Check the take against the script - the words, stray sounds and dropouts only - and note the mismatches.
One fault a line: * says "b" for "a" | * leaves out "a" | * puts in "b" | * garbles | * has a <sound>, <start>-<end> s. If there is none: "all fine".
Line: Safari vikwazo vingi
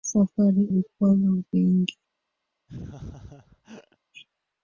* has a laugh, 2.7-4.0 s